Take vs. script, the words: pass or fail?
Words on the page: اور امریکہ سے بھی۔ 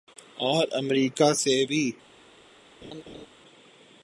pass